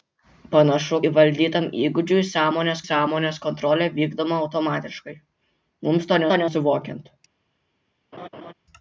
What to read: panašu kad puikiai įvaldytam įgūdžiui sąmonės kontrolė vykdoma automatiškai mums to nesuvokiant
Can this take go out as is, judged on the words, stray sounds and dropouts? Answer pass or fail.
fail